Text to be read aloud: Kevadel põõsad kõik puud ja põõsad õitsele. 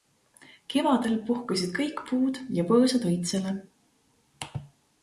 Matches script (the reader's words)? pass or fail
fail